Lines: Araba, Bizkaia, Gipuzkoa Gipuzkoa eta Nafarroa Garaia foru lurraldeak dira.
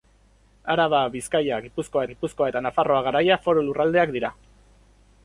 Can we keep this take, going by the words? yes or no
yes